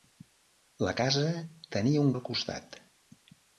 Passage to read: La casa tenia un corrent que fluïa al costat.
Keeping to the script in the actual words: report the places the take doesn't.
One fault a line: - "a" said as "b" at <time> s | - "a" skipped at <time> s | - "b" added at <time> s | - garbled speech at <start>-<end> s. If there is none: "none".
- "corrent que fluïa" skipped at 2.1 s